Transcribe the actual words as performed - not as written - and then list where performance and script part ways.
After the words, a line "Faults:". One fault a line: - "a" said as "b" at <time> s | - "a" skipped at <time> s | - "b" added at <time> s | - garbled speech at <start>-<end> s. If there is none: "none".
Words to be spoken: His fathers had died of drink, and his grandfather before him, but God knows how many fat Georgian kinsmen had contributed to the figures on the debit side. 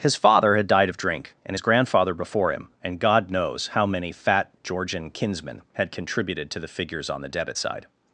His father had died of drink, and his grandfather before him, and God knows how many fat Georgian kinsmen had contributed to the figures on the debit side.
Faults:
- "fathers" said as "father" at 0.1 s
- "but" said as "and" at 2.8 s